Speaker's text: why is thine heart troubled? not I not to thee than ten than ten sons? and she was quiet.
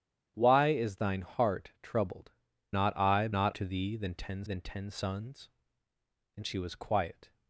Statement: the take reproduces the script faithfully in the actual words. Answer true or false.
true